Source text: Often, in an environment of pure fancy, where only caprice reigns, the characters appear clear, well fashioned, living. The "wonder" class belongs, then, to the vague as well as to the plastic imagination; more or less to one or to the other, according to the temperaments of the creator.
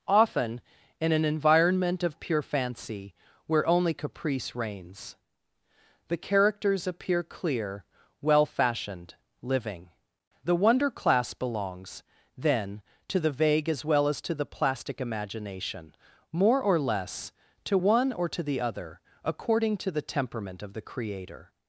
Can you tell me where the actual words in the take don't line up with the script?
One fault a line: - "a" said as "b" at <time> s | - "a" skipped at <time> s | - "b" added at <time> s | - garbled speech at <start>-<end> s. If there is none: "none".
- "temperaments" said as "temperament" at 20.0 s